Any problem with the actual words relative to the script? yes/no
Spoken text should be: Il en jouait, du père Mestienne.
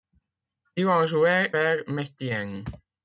yes